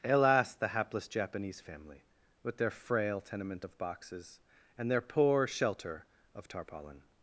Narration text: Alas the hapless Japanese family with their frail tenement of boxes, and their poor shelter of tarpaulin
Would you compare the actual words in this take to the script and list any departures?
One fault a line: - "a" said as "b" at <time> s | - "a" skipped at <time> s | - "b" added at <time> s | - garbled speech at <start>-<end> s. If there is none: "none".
none